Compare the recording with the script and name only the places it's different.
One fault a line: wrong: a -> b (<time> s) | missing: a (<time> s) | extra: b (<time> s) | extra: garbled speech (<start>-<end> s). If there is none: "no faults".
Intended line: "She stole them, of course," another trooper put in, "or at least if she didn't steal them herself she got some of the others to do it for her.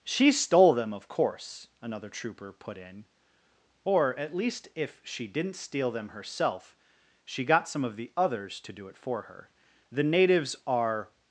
extra: The natives are (9.9 s)